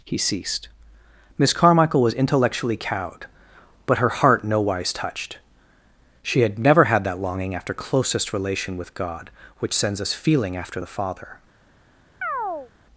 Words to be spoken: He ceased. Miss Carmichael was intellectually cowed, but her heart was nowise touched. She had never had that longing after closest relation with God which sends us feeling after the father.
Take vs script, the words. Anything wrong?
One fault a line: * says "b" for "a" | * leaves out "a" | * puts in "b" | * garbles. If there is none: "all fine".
* leaves out "was"